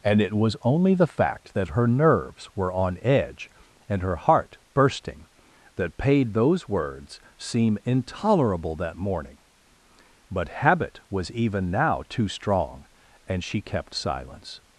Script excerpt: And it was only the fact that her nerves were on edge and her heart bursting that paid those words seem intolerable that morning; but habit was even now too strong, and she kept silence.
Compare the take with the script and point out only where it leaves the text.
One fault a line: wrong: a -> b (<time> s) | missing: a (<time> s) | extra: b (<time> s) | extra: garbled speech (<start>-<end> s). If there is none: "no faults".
no faults